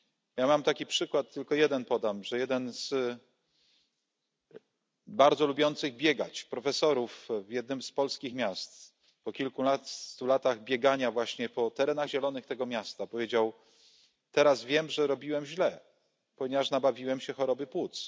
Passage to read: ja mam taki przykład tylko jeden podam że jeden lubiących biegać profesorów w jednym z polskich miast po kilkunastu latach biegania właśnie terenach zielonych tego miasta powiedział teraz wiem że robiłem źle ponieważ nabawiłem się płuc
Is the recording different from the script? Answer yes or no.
yes